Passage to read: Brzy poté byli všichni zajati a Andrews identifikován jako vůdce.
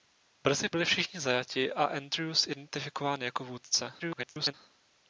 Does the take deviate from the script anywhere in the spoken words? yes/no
yes